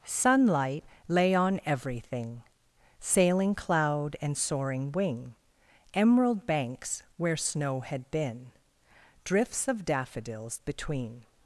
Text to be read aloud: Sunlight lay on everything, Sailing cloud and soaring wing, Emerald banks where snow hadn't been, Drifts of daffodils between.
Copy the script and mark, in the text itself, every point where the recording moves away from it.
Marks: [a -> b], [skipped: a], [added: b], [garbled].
Sunlight lay on everything, Sailing cloud and soaring wing, Emerald banks where snow [hadn't -> had] been, Drifts of daffodils between.